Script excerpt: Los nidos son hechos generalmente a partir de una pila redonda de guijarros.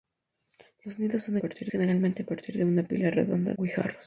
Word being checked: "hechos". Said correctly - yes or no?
no